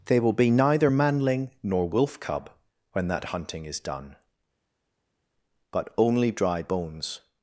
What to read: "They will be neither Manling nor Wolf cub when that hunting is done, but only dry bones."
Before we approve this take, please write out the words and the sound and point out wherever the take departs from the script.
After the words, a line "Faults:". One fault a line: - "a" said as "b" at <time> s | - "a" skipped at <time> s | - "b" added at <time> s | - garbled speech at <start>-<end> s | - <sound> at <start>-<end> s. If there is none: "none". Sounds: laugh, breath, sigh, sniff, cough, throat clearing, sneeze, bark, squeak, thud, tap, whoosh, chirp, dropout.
"They will be neither Manling nor Wolf cub when that hunting is done, but only dry bones."
Faults:
none